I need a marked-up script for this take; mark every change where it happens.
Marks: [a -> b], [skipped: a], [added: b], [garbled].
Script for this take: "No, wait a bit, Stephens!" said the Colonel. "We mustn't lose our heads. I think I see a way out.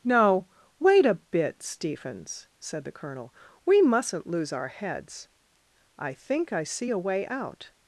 "No, wait a bit, Stephens!" said the Colonel. "We mustn't lose our heads. I think I see a way out.